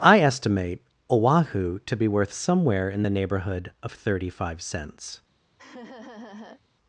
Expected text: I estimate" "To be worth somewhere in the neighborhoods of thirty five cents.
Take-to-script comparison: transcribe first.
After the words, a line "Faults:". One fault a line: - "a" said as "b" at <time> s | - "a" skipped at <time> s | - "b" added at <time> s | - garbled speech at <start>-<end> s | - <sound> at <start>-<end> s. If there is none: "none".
I estimate "Oahu" to be worth somewhere in the neighborhood of thirty five cents.
Faults:
- "Oahu" added at 1.1 s
- "neighborhoods" said as "neighborhood" at 3.1 s
- laugh at 5.6-6.6 s